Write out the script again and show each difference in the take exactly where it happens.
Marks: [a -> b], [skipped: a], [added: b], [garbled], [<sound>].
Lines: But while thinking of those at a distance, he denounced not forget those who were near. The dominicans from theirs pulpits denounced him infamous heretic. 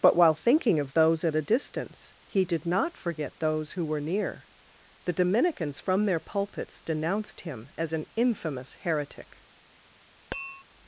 But while thinking of those at a distance, he [denounced -> did] not forget those who were near. The dominicans from [theirs -> their] pulpits denounced him [added: as an] infamous heretic. [tap]